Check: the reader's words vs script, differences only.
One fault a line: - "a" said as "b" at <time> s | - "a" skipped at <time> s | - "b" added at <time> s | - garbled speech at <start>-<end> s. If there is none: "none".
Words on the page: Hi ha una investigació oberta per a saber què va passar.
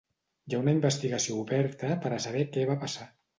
none